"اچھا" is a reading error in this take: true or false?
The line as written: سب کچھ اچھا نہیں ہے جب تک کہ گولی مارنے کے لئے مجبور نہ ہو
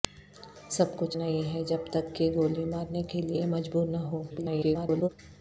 true